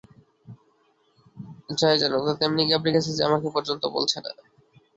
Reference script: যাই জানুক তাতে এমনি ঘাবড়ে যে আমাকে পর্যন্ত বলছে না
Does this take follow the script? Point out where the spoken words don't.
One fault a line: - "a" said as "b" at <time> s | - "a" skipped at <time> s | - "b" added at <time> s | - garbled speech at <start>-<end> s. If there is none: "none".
- "গেছে" added at 2.9 s